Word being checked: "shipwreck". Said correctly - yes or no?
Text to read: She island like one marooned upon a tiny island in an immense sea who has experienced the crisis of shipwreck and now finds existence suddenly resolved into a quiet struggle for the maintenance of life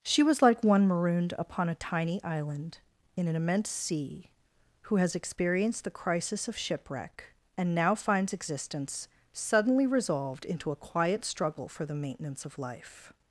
yes